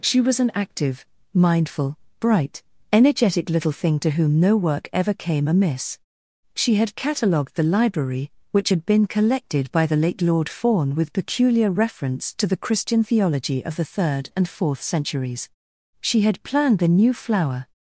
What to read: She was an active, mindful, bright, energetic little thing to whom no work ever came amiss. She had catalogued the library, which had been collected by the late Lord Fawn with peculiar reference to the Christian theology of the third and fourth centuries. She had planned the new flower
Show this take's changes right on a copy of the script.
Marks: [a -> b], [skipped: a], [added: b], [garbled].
She was an active, mindful, bright, energetic little thing to whom no work ever came amiss. She had catalogued the library, which had been collected by the late Lord Fawn with peculiar reference to the Christian theology of the third and fourth centuries. She had planned the new flower